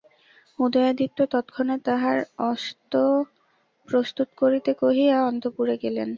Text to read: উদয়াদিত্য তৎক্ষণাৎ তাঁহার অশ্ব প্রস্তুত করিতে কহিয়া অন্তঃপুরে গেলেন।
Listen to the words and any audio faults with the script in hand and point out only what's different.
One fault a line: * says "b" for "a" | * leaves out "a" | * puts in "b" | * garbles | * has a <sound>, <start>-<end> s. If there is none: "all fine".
* leaves out "অশ্ব"